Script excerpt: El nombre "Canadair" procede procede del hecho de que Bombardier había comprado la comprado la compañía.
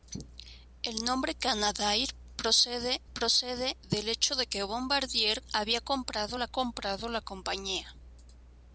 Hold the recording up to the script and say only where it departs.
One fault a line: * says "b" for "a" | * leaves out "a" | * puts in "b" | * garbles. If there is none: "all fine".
all fine